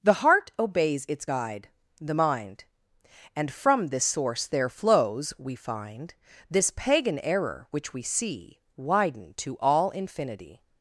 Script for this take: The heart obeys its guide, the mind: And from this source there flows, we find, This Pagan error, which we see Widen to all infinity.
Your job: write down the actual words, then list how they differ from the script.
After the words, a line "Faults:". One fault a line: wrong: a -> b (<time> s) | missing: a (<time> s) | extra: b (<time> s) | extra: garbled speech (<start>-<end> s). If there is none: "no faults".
The heart obeys its guide, the mind: And from this source there flows, we find, This Pagan error, which we see Widen to all infinity.
Faults:
no faults